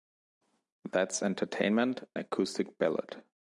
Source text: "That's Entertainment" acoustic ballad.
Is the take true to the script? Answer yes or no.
yes